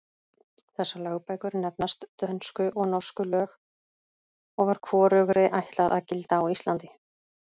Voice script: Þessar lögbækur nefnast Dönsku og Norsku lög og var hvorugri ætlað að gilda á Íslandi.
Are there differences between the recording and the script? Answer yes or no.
no